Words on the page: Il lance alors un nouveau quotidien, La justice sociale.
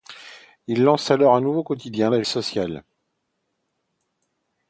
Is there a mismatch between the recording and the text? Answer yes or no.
yes